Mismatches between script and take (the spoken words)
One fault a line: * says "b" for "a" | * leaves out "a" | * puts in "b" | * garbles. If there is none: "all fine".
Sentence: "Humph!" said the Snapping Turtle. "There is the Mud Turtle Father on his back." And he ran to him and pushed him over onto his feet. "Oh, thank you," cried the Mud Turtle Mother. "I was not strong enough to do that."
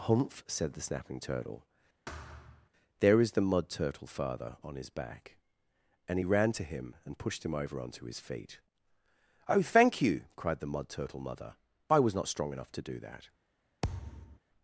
all fine